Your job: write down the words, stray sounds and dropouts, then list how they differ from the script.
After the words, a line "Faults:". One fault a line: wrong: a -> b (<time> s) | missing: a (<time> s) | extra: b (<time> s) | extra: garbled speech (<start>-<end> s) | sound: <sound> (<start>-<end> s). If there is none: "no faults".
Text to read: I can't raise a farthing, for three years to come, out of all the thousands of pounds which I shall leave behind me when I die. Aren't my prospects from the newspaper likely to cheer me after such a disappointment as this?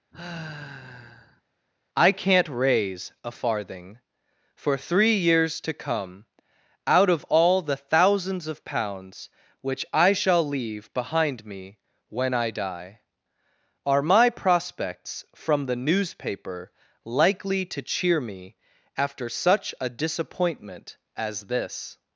I can't raise a farthing, for three years to come, out of all the thousands of pounds which I shall leave behind me when I die. Are my prospects from the newspaper likely to cheer me after such a disappointment as this?
Faults:
sound: sigh (0.1-1.4 s)
wrong: Aren't -> Are (13.8 s)